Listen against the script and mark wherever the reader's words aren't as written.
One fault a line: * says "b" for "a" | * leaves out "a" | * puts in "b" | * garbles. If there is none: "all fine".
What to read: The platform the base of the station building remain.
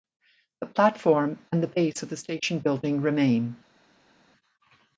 * puts in "and"